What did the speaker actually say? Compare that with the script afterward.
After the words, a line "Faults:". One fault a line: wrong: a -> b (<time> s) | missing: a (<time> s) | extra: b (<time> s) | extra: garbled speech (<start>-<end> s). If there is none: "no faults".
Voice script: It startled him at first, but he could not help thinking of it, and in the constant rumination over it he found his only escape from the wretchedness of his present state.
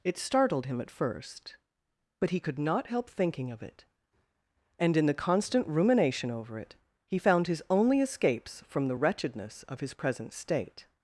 It startled him at first, but he could not help thinking of it, and in the constant rumination over it he found his only escapes from the wretchedness of his present state.
Faults:
wrong: escape -> escapes (8.0 s)